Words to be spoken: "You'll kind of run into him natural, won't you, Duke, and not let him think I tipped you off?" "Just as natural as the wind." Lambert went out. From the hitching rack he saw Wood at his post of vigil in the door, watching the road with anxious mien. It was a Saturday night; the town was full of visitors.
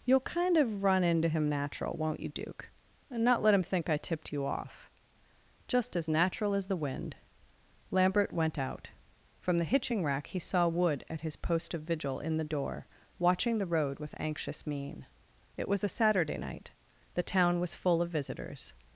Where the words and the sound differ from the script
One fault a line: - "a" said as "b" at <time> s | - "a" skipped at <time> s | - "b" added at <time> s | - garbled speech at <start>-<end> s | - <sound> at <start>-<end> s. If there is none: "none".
none